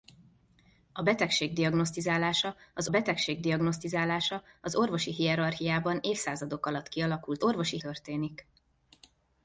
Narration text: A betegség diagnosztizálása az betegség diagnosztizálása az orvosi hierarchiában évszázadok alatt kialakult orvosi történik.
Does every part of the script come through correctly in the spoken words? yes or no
yes